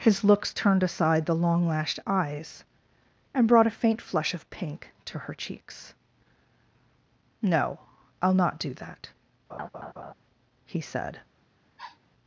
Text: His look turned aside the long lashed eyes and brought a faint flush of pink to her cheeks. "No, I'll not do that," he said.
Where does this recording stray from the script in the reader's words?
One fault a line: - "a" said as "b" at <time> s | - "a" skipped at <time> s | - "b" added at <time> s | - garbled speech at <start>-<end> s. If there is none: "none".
- "look" said as "looks" at 0.2 s